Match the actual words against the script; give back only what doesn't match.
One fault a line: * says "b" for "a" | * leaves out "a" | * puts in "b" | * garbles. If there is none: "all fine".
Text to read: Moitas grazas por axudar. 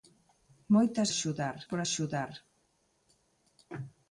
* says "axudar" for "grazas"